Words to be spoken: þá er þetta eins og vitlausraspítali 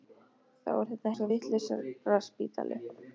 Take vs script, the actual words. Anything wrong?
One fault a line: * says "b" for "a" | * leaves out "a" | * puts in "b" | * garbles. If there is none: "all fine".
all fine